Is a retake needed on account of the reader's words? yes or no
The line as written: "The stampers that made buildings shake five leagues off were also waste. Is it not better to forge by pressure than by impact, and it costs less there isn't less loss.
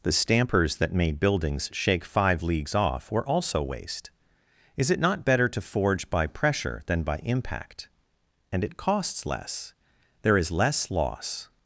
yes